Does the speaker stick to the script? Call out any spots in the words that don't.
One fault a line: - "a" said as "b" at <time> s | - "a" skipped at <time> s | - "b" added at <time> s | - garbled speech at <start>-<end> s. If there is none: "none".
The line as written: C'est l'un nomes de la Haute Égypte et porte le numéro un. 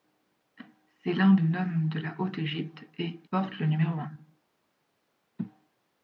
none